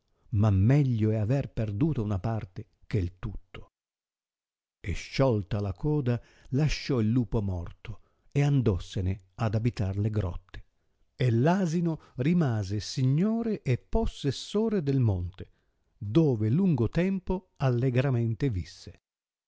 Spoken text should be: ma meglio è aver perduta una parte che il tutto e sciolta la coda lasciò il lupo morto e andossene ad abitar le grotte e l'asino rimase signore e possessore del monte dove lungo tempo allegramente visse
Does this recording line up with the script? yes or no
yes